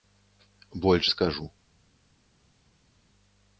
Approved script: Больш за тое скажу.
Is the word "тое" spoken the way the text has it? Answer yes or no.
no